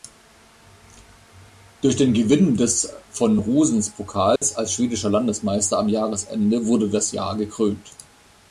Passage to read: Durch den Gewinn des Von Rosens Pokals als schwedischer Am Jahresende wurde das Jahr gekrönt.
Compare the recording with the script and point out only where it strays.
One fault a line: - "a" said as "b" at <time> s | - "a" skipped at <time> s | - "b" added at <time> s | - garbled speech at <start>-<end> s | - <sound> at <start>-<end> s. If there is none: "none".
- dropout at 4.4-4.4 s
- "Landesmeister" added at 5.1 s